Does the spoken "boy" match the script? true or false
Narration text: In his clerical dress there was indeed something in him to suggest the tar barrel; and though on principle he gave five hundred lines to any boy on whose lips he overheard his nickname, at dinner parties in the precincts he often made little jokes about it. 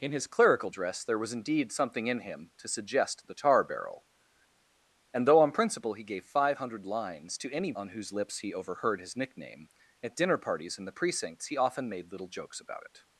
false